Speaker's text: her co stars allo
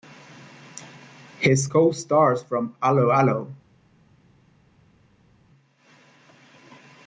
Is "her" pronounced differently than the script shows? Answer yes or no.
yes